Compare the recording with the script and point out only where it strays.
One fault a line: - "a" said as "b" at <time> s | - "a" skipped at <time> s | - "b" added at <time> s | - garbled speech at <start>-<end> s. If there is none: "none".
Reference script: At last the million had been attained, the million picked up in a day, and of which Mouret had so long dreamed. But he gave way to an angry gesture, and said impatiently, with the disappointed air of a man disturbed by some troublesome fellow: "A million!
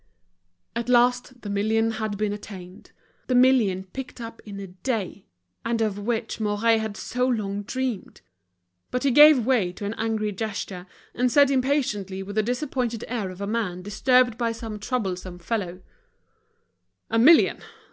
none